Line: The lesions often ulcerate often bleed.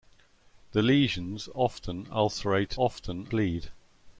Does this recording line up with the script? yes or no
yes